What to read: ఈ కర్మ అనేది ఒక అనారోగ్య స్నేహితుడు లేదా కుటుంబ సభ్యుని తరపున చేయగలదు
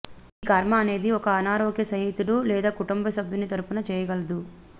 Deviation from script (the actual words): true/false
false